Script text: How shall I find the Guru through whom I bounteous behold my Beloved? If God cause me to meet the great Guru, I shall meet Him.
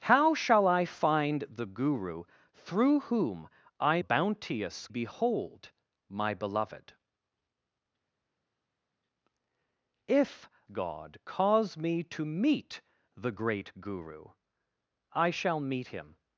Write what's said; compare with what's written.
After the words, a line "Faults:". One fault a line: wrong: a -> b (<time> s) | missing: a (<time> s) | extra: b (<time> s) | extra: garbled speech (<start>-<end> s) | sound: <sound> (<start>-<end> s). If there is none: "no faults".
How shall I find the Guru through whom I bounteous behold my Beloved? If God cause me to meet the great Guru, I shall meet Him.
Faults:
no faults